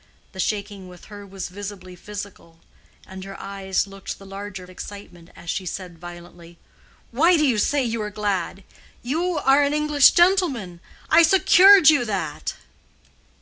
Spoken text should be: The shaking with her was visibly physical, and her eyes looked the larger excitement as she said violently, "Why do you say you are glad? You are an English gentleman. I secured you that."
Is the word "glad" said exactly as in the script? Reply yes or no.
yes